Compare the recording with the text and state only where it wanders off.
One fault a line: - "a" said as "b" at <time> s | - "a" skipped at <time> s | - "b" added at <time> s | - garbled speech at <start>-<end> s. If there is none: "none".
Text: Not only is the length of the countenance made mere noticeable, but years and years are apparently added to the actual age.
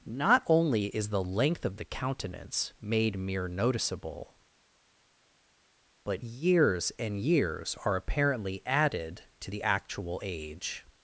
none